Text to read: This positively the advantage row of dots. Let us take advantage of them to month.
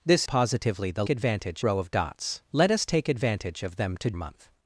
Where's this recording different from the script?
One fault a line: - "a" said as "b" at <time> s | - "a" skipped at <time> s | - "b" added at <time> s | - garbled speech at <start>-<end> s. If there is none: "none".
none